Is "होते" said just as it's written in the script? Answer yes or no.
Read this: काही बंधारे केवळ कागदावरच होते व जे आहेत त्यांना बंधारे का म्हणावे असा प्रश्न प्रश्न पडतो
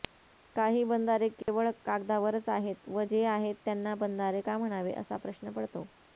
no